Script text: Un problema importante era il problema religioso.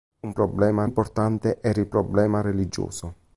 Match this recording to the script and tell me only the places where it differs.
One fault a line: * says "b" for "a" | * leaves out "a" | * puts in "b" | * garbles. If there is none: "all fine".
all fine